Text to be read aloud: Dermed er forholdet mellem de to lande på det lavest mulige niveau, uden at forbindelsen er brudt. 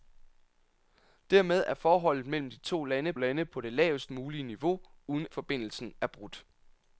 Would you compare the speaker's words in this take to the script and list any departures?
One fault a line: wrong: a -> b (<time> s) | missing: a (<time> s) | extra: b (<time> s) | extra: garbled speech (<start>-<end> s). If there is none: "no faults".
extra: lande (3.2 s)
missing: at (5.3 s)